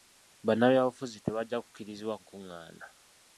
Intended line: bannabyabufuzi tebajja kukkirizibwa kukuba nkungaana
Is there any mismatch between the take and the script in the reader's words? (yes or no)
yes